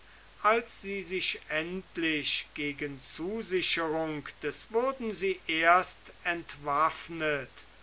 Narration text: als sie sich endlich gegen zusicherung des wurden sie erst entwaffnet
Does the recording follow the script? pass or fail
pass